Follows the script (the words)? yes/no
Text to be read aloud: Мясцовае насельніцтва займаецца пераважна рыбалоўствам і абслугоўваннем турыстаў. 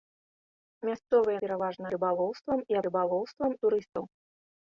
no